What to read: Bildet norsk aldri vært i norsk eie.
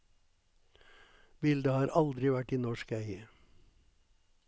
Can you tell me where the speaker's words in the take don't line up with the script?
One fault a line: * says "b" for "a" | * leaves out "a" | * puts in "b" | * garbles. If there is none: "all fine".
* says "har" for "norsk"